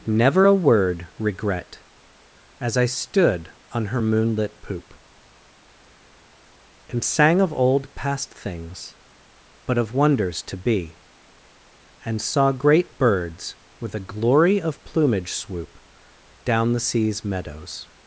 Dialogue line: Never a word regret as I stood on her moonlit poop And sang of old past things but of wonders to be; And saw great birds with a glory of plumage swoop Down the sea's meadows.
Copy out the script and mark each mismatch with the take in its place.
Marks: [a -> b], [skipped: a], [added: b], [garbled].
Never a word regret as I stood on her moonlit poop And sang of old past things but of wonders to be; And saw great birds with a glory of plumage swoop Down the sea's meadows.